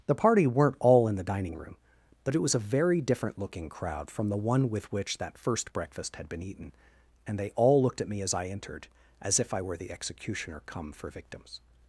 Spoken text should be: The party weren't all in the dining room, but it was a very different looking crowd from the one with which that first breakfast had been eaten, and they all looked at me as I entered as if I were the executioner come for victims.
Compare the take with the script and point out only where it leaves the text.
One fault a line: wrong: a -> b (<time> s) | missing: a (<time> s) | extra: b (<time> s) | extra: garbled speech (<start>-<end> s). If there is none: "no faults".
no faults